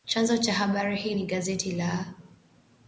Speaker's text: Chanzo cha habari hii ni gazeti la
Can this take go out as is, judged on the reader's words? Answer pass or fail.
pass